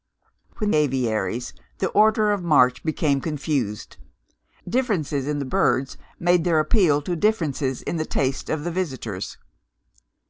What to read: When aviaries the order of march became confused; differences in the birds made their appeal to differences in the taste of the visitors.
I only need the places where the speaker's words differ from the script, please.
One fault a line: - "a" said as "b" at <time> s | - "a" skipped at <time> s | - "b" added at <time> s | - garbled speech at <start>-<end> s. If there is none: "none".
none